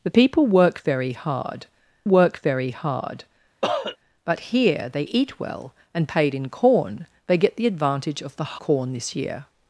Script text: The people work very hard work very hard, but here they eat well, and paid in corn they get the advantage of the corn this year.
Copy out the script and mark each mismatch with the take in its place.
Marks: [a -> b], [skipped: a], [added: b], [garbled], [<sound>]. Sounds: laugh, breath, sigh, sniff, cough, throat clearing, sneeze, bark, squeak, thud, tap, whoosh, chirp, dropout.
The people work very hard work very hard, [cough] but here they eat well, and paid in corn they get the advantage of the corn this year.